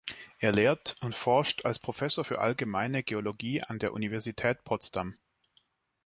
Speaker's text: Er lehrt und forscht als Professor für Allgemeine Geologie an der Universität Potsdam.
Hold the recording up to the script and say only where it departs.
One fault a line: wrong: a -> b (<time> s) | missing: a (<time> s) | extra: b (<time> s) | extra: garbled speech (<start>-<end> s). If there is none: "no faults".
no faults